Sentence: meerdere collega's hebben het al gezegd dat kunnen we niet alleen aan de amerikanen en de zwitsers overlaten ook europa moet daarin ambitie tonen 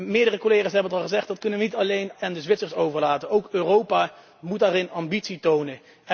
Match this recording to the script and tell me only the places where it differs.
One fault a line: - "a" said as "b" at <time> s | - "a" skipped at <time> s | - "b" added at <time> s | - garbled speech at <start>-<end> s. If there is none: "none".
- "aan de amerikanen" skipped at 2.1 s